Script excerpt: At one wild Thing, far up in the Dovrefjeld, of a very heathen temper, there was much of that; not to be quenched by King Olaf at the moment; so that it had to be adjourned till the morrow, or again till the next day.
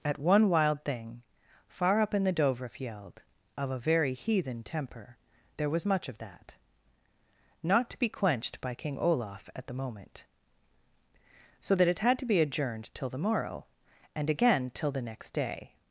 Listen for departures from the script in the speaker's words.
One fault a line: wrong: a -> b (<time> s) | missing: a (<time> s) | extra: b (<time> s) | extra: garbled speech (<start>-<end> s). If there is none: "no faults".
wrong: or -> and (14.2 s)